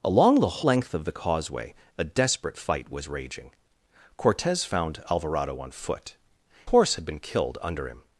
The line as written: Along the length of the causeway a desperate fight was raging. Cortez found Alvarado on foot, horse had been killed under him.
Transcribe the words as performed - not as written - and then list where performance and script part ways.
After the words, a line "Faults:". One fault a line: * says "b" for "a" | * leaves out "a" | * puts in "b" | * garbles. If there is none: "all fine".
Along the length of the causeway a desperate fight was raging. Cortez found Alvarado on foot, horse had been killed under him.
Faults:
all fine